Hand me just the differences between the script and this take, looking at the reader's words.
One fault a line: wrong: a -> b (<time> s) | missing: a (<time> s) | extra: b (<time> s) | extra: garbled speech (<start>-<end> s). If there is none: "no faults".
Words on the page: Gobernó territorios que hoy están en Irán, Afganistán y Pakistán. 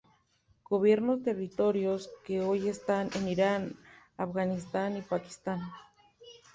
no faults